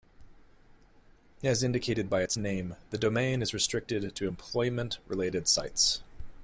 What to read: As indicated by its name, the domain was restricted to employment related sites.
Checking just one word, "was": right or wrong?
wrong